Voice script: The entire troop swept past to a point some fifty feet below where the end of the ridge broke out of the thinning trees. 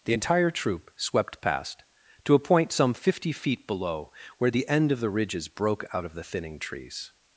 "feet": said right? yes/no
yes